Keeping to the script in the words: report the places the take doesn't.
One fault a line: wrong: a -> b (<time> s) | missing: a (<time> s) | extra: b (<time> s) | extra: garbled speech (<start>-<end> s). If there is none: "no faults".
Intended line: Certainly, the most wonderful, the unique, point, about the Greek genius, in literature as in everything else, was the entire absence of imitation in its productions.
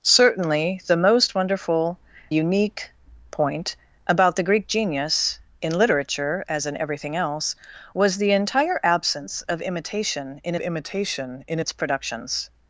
missing: the (2.0 s)
extra: imitation in (10.6 s)